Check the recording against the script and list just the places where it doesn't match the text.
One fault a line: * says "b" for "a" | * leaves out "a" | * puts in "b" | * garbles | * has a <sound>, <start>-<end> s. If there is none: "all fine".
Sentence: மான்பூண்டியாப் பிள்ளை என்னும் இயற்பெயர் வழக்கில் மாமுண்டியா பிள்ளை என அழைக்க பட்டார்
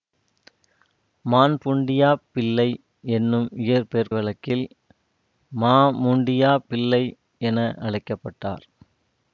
all fine